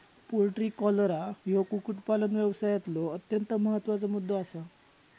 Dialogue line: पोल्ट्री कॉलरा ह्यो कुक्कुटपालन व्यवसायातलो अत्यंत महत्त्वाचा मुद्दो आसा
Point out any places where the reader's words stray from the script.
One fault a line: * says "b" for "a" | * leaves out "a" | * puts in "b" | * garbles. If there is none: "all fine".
all fine